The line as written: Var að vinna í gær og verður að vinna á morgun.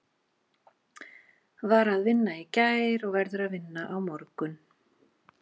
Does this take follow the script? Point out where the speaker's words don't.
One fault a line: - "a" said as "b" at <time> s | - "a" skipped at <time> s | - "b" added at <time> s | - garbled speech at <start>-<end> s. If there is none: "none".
none